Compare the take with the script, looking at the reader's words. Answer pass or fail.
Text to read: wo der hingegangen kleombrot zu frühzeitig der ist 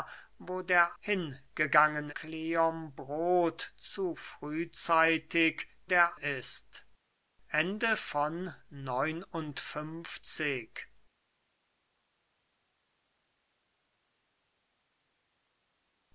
pass